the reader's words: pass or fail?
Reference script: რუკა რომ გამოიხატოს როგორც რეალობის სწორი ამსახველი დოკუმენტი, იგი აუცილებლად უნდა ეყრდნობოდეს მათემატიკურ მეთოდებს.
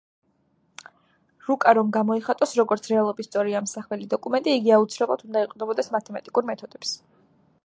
pass